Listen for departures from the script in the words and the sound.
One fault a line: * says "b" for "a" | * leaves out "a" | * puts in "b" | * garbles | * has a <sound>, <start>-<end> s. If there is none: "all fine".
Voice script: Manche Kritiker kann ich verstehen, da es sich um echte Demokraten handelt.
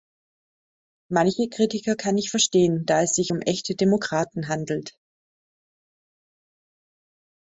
all fine